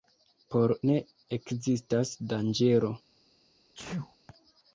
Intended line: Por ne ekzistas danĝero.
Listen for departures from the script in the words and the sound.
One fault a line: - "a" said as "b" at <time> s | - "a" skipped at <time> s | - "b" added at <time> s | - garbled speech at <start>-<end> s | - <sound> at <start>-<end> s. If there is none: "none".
- sneeze at 3.7-4.2 s